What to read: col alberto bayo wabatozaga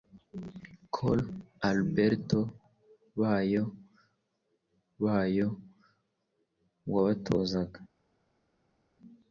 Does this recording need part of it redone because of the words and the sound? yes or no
yes